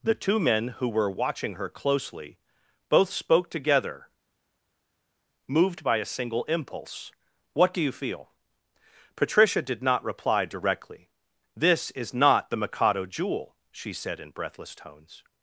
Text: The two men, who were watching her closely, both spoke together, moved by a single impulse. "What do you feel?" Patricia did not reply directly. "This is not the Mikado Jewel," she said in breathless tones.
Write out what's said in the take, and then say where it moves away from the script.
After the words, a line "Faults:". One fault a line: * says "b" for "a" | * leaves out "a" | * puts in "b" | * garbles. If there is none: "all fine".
The two men, who were watching her closely, both spoke together, moved by a single impulse. "What do you feel?" Patricia did not reply directly. "This is not the Mikado Jewel," she said in breathless tones.
Faults:
all fine